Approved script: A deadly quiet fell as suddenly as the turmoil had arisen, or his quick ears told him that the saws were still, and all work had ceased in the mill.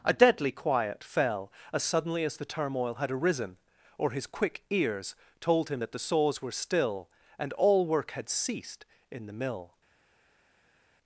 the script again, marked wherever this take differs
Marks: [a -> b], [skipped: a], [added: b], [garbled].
A deadly quiet fell as suddenly as the turmoil had arisen, or his quick ears told him that the saws were still, and all work had ceased in the mill.